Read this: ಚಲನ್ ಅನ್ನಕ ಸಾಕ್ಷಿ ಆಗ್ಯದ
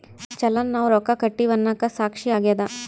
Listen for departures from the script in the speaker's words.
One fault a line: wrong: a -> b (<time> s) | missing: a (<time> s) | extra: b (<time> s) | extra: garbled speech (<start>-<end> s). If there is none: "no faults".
extra: ನಾವ್ ರೊಕ್ಕ ಕಟ್ಟಿವಿ (0.8 s)